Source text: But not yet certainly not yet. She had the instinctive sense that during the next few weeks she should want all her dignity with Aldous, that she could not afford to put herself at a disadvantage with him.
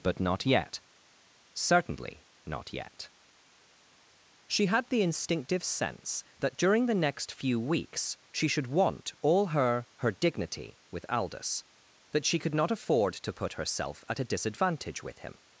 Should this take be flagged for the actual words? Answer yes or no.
yes